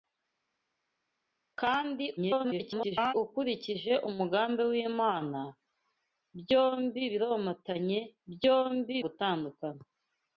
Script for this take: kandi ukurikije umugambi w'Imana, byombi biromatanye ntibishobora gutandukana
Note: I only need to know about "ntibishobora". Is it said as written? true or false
false